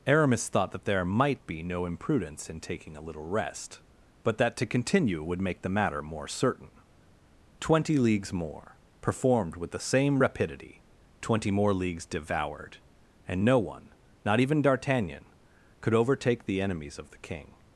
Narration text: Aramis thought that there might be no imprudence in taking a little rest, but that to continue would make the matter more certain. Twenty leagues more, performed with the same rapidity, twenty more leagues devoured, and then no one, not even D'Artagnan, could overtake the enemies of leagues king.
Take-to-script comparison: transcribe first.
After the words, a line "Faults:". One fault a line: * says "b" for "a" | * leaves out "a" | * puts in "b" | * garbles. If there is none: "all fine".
Aramis thought that there might be no imprudence in taking a little rest, but that to continue would make the matter more certain. Twenty leagues more, performed with the same rapidity, twenty more leagues devoured, and no one, not even D'Artagnan, could overtake the enemies of the king.
Faults:
* leaves out "then"
* says "the" for "leagues"